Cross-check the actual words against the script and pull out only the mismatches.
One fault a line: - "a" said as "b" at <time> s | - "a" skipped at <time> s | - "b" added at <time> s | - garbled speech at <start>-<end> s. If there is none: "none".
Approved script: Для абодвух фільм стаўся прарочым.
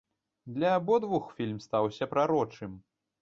none